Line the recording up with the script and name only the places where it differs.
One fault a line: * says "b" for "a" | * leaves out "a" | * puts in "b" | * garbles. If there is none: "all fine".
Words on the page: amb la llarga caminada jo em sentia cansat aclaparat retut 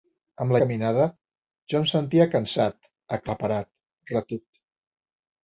* leaves out "llarga"